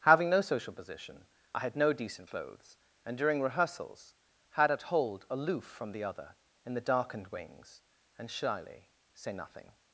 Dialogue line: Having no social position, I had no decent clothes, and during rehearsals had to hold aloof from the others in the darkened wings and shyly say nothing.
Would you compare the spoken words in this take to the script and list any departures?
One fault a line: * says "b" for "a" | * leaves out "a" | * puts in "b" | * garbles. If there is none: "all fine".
* says "at" for "to"
* says "other" for "others"